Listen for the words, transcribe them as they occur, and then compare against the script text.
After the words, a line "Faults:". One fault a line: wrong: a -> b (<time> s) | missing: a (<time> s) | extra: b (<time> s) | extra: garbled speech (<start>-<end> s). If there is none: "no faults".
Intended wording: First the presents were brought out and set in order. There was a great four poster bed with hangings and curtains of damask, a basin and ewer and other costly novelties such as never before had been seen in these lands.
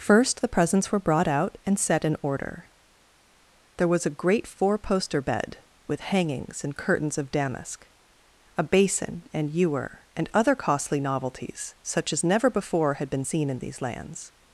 First the presents were brought out and set in order. There was a great four poster bed with hangings and curtains of damask, a basin and ewer and other costly novelties such as never before had been seen in these lands.
Faults:
no faults